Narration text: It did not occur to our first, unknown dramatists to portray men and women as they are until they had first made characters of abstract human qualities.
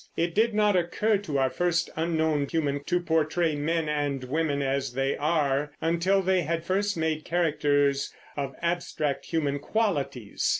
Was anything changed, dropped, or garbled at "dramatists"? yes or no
yes